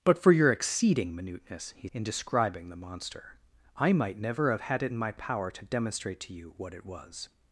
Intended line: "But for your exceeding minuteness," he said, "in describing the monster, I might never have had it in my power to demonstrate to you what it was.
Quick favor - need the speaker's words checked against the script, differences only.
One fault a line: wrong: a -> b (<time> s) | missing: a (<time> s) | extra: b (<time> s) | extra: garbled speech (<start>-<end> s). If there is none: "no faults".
missing: said (1.9 s)